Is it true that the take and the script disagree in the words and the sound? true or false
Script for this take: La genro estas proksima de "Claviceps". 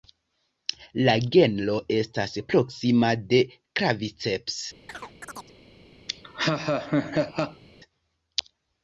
true